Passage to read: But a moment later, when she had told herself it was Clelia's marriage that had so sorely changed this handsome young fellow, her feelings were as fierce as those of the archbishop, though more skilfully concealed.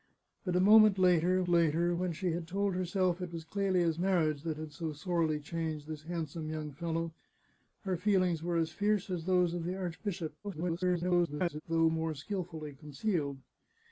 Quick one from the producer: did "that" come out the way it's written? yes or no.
yes